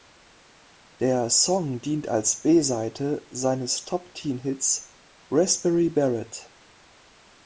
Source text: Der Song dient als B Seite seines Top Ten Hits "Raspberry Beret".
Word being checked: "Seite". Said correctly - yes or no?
yes